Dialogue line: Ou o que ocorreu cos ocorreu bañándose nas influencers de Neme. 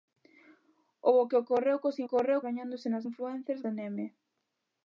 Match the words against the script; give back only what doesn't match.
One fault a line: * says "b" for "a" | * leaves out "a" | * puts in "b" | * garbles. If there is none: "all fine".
all fine